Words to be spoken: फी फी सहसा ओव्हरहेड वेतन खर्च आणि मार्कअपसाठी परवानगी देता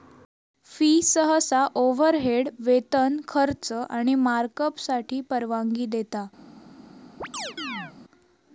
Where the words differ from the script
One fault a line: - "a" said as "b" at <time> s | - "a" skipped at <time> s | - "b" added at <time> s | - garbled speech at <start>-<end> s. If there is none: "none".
- "फी" skipped at 0.9 s